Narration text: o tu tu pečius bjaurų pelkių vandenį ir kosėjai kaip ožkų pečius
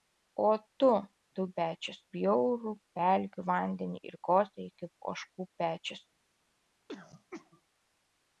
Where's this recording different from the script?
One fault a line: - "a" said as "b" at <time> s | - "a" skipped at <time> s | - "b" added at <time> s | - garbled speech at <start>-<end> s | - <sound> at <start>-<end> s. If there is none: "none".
- throat clearing at 6.9-7.6 s